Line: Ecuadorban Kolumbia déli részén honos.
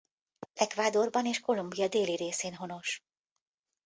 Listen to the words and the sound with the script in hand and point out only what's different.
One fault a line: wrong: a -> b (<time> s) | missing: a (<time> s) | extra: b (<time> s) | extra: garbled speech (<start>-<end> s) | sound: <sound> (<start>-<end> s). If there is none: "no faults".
extra: és (1.2 s)